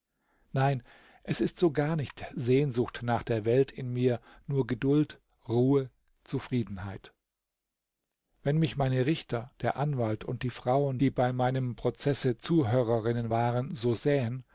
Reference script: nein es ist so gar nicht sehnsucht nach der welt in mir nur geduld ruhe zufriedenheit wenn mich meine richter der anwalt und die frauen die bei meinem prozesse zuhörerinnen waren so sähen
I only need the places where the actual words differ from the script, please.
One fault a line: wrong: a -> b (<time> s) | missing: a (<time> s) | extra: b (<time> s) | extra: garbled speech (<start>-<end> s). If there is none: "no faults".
no faults